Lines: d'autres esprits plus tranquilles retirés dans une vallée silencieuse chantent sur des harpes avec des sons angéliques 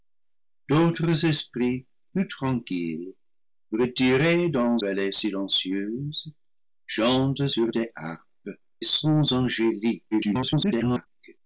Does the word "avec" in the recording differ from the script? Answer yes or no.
yes